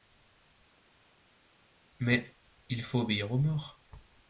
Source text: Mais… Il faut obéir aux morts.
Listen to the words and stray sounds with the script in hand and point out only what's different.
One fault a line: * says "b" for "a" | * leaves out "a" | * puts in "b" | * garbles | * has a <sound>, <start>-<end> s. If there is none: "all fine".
all fine